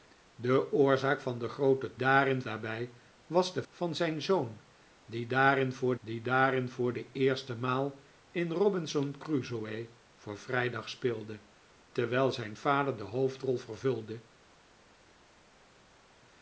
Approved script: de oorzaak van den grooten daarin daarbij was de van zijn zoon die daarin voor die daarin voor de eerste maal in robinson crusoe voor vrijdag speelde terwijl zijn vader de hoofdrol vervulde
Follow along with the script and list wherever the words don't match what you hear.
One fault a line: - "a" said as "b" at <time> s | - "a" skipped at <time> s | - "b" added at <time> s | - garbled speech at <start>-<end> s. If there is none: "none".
none